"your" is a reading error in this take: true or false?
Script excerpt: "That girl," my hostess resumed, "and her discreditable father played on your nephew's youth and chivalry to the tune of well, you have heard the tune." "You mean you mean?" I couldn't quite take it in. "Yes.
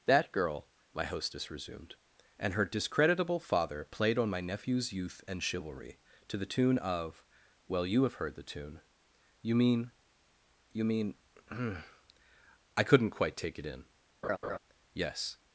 true